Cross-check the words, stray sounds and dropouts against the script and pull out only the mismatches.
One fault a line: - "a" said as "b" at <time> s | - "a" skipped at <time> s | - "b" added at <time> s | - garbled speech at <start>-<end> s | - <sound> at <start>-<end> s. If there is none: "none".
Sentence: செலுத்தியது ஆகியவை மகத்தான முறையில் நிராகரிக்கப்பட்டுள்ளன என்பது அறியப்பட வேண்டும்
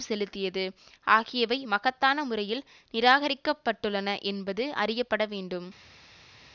none